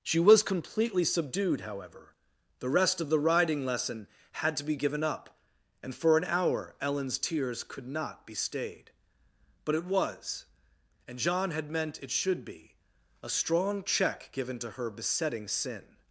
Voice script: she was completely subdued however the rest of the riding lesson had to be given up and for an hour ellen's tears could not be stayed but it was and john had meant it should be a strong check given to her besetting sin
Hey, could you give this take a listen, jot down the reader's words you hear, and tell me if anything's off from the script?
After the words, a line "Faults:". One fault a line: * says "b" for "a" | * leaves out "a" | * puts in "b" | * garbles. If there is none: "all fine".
she was completely subdued however the rest of the riding lesson had to be given up and for an hour ellen's tears could not be stayed but it was and john had meant it should be a strong check given to her besetting sin
Faults:
all fine